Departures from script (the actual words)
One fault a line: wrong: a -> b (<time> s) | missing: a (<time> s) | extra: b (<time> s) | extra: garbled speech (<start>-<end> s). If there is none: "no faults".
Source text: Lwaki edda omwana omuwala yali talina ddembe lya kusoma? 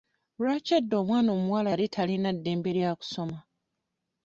no faults